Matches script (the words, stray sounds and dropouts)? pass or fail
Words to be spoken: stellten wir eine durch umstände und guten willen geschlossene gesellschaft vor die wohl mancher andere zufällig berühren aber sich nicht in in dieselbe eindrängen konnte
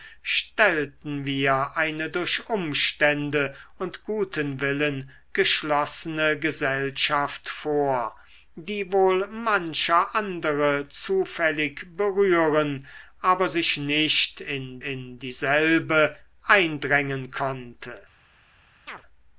fail